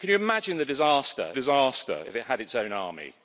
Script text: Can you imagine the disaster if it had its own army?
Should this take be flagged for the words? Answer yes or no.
yes